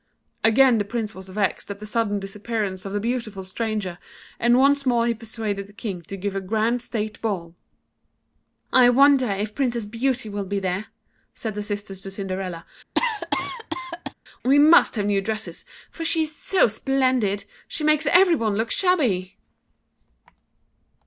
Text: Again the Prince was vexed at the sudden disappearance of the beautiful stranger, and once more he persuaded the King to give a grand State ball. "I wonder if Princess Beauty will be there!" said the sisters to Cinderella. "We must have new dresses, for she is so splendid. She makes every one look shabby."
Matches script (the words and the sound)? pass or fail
fail